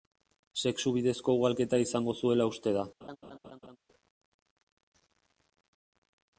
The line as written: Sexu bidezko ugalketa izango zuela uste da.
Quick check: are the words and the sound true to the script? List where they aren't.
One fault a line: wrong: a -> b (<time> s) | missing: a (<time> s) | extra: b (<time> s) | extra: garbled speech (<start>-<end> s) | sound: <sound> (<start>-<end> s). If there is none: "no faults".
sound: laugh (3.0-3.8 s)